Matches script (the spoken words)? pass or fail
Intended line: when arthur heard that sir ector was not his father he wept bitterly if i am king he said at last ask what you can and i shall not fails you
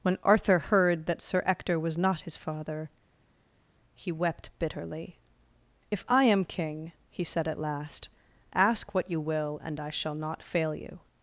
fail